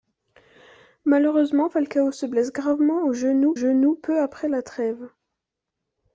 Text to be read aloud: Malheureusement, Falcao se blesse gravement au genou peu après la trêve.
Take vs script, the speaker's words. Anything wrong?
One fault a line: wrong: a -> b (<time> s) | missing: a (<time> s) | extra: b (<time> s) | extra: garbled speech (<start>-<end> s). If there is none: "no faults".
extra: genou (3.5 s)